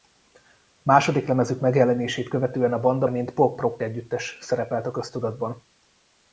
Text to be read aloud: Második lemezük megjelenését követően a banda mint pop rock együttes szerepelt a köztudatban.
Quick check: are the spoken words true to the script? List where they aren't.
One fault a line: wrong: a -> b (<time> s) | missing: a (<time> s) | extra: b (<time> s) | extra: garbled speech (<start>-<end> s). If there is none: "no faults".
no faults